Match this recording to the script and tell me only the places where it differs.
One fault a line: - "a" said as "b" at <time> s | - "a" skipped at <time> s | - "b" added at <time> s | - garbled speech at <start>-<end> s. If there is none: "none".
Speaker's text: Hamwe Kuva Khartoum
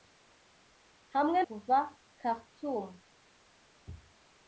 none